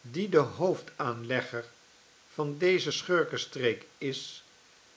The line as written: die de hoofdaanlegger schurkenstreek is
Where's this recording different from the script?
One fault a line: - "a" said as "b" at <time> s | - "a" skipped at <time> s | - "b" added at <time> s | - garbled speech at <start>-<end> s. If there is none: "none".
- "van deze" added at 2.3 s